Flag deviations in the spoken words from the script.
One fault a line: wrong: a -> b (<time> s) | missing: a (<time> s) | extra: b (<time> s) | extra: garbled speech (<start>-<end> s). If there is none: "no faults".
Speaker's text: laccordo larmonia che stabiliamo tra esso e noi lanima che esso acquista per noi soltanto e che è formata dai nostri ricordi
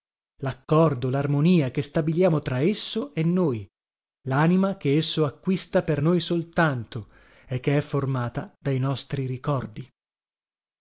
no faults